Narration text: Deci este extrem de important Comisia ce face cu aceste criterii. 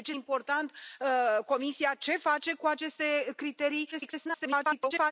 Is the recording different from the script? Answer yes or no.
yes